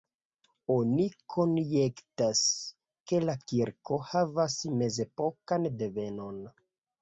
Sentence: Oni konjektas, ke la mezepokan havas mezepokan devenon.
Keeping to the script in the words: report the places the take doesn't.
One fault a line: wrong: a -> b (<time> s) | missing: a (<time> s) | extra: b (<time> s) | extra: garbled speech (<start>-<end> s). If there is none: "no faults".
wrong: mezepokan -> kirko (3.4 s)